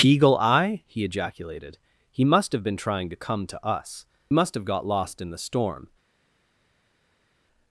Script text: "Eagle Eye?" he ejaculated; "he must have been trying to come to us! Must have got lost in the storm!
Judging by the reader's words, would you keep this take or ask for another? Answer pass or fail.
pass